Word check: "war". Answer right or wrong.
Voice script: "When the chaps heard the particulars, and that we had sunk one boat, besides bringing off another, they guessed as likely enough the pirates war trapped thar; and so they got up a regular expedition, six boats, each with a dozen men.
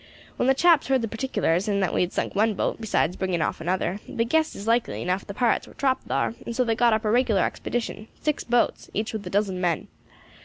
right